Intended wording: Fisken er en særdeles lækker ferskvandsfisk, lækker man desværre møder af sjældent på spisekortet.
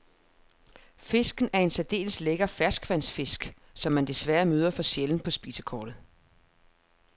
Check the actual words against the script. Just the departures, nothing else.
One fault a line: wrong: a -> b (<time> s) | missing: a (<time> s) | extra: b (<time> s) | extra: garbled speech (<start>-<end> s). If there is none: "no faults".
wrong: lækker -> som (3.7 s)
wrong: af -> for (4.7 s)